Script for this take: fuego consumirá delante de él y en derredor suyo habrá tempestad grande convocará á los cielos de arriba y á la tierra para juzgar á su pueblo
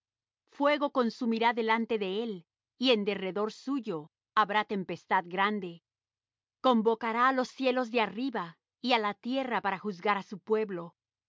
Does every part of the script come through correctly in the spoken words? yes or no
yes